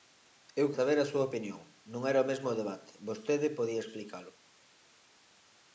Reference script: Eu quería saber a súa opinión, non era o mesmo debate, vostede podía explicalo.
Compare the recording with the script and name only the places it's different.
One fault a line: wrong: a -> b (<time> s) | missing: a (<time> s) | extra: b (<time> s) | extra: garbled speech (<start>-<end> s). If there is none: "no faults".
missing: quería (0.7 s)